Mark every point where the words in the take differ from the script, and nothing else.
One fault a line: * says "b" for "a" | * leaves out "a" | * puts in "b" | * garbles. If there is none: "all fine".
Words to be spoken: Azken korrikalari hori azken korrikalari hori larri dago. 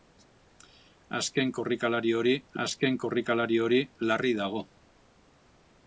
all fine